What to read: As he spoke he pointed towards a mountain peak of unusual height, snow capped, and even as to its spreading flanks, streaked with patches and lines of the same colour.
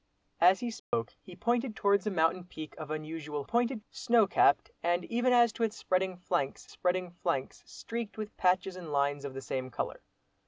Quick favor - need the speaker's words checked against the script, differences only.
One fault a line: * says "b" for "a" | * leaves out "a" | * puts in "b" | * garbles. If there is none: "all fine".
* says "pointed" for "height"
* puts in "spreading flanks"